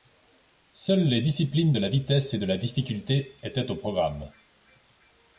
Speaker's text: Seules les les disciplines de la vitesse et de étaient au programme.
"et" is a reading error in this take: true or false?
false